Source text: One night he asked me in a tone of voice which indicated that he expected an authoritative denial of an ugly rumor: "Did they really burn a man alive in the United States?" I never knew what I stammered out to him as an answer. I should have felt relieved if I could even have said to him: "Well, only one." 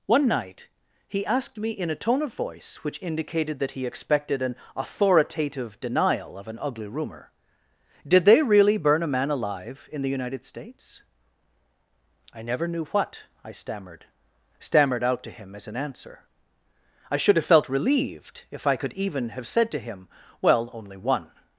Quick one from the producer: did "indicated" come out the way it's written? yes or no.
yes